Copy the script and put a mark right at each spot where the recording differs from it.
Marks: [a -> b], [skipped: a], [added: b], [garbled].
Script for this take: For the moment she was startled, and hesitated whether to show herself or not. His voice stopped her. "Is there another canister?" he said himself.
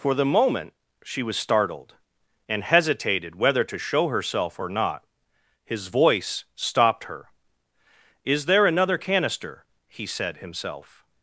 For the moment she was startled, and hesitated whether to show herself or not. His voice stopped her. "Is there another canister?" he said himself.